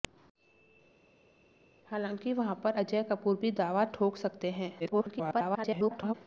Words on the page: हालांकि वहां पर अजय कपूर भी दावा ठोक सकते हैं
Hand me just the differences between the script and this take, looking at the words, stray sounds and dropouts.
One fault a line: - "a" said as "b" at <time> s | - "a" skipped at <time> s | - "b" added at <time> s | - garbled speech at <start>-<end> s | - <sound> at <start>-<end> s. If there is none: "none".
- garbled speech at 4.8-6.1 s